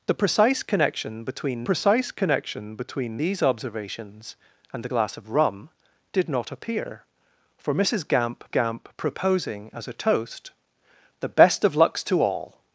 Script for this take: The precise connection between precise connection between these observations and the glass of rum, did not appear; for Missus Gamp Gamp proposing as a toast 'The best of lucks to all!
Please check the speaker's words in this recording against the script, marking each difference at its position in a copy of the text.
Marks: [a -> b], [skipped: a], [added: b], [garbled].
The precise connection between precise connection between these observations and the glass of rum, did not appear; for Missus Gamp Gamp proposing as a toast 'The best of lucks to all!